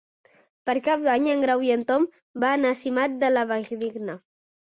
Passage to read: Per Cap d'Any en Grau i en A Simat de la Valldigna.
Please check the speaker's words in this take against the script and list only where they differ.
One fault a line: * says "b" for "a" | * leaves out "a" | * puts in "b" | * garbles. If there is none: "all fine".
* puts in "Tom van"